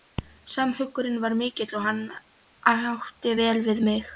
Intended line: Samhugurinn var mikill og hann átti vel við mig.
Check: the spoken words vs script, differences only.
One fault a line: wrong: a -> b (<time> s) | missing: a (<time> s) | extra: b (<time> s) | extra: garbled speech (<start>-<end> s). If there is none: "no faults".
no faults